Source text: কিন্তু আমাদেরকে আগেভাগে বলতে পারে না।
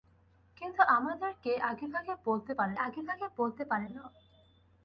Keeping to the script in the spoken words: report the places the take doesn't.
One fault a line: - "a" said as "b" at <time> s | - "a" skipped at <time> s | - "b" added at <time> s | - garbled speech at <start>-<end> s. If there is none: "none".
- "আগেভাগে বলতে পারে" added at 2.8 s